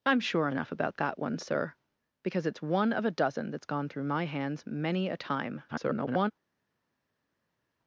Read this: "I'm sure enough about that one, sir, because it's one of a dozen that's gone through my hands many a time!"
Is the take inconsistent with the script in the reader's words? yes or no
yes